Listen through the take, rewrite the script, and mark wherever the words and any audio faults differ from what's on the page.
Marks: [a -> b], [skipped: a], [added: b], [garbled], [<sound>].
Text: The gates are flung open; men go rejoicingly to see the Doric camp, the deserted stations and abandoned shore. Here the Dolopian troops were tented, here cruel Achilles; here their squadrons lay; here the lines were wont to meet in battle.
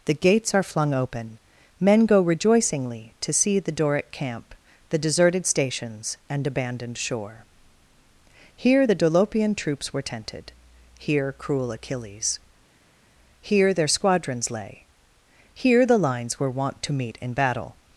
The gates are flung open; men go rejoicingly to see the Doric camp, the deserted stations and abandoned shore. Here the Dolopian troops were tented, here cruel Achilles; here their squadrons lay; here the lines were wont to meet in battle.